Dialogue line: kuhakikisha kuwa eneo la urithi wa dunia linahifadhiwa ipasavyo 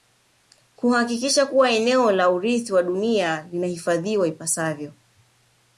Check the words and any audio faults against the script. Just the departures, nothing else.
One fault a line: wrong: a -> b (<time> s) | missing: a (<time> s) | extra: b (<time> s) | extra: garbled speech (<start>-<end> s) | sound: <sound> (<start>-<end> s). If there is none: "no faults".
no faults